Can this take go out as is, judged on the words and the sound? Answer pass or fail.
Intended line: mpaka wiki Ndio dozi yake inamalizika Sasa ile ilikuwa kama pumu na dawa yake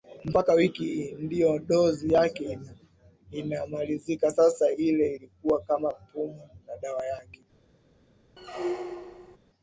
fail